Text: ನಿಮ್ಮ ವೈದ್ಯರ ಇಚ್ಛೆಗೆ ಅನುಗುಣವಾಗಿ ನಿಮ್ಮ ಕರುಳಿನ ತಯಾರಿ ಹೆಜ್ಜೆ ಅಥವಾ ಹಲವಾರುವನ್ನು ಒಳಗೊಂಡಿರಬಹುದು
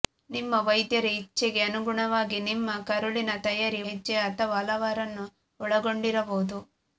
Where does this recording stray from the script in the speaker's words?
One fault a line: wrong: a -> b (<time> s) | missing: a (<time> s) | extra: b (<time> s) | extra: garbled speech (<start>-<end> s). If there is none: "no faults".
no faults